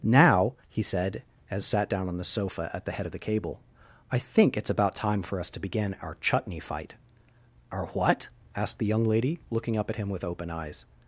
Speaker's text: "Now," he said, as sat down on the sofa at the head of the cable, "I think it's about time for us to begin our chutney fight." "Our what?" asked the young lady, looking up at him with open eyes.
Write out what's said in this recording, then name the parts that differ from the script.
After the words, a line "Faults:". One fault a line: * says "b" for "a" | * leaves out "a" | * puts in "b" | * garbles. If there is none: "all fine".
"Now," he said, as sat down on the sofa at the head of the cable, "I think it's about time for us to begin our chutney fight." "Our what?" asked the young lady, looking up at him with open eyes.
Faults:
all fine